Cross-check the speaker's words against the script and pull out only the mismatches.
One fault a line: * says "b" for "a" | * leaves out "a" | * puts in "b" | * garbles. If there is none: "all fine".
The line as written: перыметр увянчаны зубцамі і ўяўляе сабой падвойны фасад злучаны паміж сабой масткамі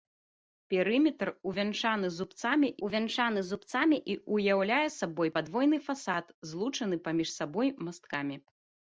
* puts in "увянчаны зубцамі"